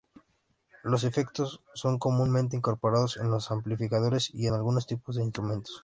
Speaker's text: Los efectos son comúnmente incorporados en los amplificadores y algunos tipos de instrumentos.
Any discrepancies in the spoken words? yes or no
no